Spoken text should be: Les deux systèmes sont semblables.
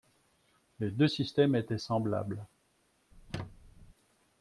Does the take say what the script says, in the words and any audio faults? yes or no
no